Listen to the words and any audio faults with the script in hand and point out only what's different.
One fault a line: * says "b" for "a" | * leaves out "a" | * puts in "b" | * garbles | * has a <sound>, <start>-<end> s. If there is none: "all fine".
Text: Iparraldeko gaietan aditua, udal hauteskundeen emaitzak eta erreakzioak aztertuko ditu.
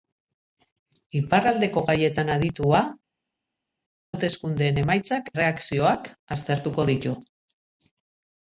* leaves out "udal"
* leaves out "eta"